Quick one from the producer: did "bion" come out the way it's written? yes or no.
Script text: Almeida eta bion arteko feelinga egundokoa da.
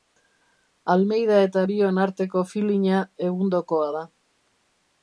yes